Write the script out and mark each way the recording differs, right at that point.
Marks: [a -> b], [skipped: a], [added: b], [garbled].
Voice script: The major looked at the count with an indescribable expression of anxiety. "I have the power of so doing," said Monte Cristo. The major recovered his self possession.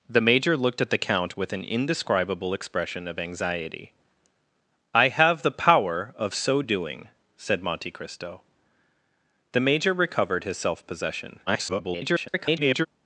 The major looked at the count with an indescribable expression of anxiety. "I have the power of so doing," said Monte Cristo. The major recovered his self possession. [garbled]